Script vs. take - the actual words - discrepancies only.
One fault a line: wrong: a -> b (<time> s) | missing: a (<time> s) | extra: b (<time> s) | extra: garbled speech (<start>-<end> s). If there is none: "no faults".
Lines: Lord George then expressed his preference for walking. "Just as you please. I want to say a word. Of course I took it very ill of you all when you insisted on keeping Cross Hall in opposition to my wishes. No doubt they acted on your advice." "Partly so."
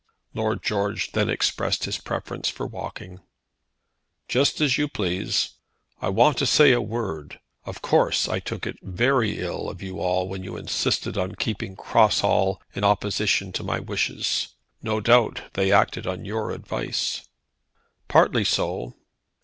no faults